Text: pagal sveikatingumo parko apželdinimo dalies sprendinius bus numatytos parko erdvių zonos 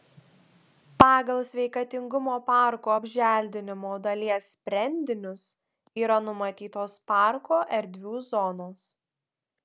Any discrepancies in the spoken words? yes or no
yes